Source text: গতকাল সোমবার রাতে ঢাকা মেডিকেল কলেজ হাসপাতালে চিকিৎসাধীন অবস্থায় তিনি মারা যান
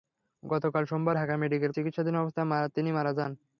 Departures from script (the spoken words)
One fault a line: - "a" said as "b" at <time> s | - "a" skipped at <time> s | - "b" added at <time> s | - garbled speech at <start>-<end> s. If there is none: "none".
- "রাতে" skipped at 1.1 s
- "কলেজ হাসপাতালে" skipped at 1.7 s